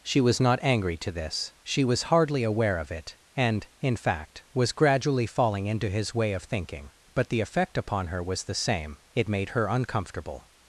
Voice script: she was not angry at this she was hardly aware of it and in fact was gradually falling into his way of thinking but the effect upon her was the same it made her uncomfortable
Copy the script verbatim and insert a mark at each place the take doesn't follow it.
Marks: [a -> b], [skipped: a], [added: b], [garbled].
she was not angry [at -> to] this she was hardly aware of it and in fact was gradually falling into his way of thinking but the effect upon her was the same it made her uncomfortable